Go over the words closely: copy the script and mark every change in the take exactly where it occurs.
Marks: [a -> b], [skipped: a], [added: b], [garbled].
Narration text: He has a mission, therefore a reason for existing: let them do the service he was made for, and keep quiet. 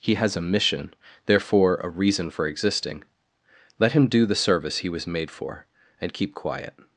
He has a mission, therefore a reason for existing: let [them -> him] do the service he was made for, and keep quiet.